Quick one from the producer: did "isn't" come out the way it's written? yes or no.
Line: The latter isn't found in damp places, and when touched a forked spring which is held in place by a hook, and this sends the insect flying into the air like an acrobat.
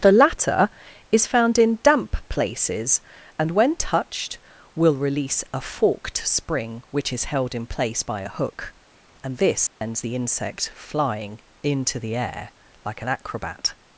no